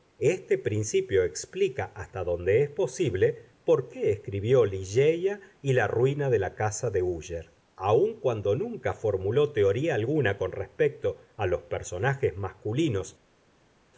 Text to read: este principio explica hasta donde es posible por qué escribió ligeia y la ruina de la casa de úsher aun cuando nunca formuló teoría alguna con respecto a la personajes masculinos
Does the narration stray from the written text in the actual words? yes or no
yes